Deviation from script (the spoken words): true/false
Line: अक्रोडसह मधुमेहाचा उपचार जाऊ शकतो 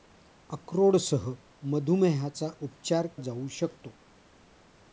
false